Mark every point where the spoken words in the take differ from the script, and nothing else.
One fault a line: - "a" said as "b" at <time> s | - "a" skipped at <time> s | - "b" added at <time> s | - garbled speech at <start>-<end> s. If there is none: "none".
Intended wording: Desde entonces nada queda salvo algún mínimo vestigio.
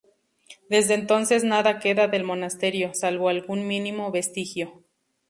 - "del monasterio" added at 2.1 s